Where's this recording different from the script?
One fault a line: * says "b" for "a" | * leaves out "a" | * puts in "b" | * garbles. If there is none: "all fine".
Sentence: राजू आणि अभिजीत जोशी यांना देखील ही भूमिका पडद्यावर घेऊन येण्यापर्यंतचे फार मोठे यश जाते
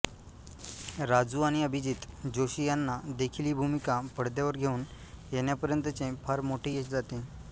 all fine